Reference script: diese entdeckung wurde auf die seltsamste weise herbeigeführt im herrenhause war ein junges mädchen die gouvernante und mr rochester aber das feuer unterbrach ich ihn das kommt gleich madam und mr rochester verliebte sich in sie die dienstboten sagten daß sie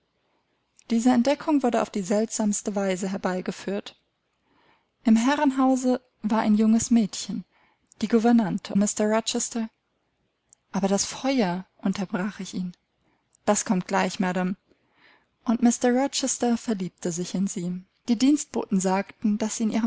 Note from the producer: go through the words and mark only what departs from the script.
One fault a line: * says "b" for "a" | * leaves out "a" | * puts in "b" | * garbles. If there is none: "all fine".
* leaves out "und"